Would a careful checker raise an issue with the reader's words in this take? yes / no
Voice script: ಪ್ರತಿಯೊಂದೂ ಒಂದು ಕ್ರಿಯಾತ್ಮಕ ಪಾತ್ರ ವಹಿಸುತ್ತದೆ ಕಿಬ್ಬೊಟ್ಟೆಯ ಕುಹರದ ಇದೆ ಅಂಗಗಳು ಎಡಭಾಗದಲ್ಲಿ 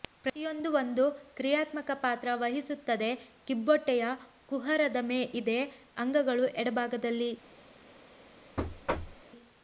no